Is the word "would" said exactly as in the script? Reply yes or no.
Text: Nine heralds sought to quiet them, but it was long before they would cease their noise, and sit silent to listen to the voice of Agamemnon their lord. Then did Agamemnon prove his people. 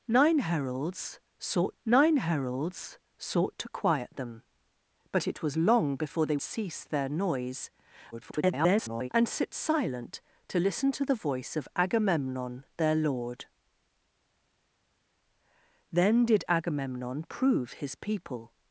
no